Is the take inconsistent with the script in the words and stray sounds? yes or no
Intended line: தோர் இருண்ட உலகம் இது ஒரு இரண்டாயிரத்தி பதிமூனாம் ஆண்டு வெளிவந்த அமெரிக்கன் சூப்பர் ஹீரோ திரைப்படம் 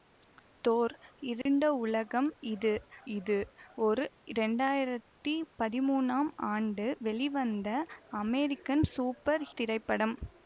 yes